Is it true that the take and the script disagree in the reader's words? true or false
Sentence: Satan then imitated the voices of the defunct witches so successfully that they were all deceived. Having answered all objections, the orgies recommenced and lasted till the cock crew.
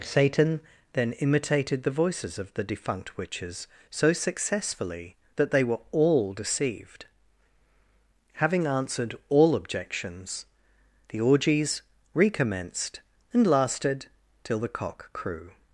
false